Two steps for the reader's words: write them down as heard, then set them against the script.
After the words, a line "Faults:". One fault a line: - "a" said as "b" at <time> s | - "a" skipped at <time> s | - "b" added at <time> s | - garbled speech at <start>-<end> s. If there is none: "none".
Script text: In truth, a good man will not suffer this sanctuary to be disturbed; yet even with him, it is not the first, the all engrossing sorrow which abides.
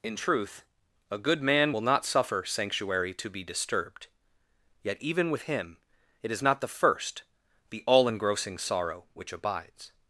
In truth, a good man will not suffer sanctuary to be disturbed; yet even with him, it is not the first, the all engrossing sorrow which abides.
Faults:
- "this" skipped at 2.4 s